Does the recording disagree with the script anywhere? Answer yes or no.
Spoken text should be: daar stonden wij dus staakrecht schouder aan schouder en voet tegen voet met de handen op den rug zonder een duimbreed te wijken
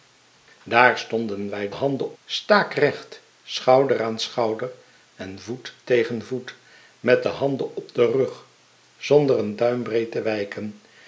yes